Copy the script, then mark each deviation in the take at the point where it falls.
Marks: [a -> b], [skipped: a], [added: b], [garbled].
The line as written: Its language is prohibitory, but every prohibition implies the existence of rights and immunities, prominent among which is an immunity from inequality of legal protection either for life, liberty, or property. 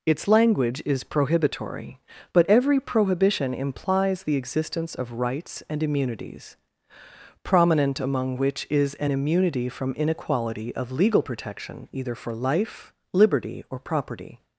Its language is prohibitory, but every prohibition implies the existence of rights and immunities, prominent among which is an immunity from inequality of legal protection either for life, liberty, or property.